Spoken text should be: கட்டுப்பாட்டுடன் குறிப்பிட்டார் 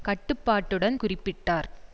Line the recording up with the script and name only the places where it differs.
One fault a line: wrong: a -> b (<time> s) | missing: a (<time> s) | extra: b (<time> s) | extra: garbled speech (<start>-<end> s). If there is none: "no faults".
no faults